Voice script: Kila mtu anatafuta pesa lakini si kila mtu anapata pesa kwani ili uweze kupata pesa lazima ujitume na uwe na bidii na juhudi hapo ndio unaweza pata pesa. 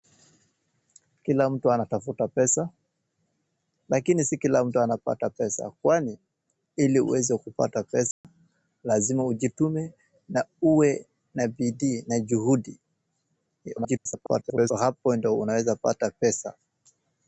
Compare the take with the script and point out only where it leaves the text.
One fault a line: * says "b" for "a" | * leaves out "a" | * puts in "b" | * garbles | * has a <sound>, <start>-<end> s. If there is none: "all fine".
* has a dropout, 8.1-8.2 s
* garbles